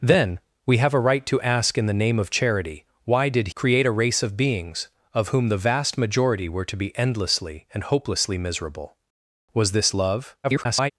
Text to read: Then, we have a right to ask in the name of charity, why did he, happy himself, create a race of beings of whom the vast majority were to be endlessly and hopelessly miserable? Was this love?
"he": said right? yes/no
no